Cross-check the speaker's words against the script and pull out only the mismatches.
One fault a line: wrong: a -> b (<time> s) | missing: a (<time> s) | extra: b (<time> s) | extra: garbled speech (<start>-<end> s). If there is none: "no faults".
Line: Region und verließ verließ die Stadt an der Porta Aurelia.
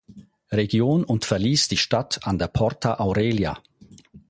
missing: verließ (1.7 s)